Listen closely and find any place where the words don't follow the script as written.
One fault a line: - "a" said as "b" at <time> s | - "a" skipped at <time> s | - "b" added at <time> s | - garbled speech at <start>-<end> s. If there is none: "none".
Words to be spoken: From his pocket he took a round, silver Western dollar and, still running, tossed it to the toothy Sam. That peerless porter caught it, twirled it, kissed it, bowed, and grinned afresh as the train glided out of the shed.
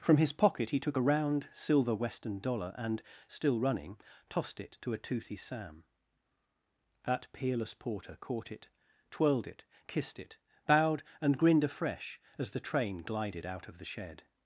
- "the" said as "a" at 4.9 s